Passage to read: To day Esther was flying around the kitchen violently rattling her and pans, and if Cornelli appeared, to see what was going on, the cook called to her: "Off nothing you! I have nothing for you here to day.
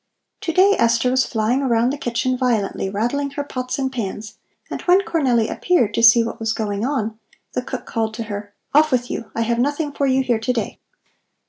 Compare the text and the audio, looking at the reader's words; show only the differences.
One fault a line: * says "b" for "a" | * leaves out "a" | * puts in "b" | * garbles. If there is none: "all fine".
* puts in "pots"
* says "when" for "if"
* says "with" for "nothing"